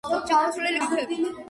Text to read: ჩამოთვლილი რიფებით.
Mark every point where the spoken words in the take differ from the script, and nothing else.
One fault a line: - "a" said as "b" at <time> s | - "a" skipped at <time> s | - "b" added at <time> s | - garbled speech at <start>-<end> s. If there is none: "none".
none